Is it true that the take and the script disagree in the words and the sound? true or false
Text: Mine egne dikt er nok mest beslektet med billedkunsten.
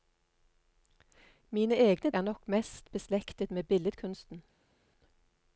true